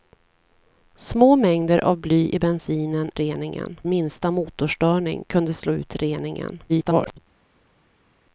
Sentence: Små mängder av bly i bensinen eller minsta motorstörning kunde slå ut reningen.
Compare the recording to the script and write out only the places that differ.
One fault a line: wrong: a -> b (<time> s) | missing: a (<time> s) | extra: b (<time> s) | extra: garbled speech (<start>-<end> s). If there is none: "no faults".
wrong: eller -> reningen (3.1 s)
extra: garbled speech (6.7-7.2 s)